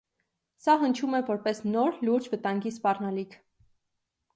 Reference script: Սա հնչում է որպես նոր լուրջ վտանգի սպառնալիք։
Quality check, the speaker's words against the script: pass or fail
pass